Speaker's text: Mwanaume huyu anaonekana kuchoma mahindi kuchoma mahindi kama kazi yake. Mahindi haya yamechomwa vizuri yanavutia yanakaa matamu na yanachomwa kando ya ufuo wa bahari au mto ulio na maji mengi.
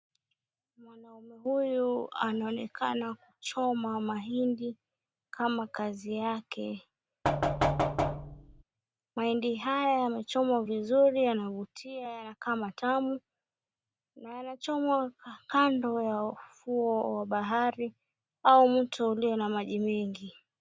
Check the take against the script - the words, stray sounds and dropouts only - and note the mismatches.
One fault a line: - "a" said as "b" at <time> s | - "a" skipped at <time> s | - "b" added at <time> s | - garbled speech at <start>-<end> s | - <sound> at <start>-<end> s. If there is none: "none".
- "kuchoma mahindi" skipped at 4.8 s
- thud at 7.2-8.6 s